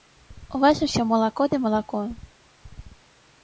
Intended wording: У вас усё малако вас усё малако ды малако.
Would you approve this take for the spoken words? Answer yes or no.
no